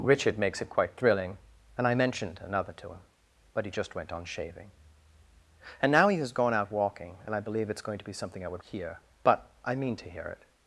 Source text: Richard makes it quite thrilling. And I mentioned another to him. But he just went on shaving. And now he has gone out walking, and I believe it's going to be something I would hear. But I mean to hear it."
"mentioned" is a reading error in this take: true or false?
false